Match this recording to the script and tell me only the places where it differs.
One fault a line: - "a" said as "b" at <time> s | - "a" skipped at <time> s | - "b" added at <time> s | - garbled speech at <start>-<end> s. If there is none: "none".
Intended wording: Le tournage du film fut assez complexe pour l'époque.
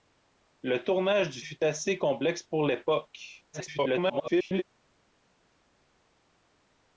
- "film" skipped at 1.4 s
- garbled speech at 3.5-4.6 s